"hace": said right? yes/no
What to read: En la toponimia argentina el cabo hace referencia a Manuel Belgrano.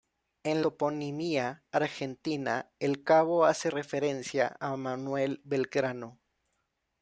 yes